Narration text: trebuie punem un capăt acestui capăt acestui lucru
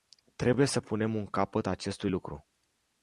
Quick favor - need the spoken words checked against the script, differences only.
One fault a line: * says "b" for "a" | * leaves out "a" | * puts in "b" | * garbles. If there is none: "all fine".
* puts in "să"
* leaves out "capăt acestui"